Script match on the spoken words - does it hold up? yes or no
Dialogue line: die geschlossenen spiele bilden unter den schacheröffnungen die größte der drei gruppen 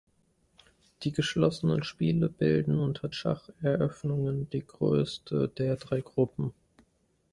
no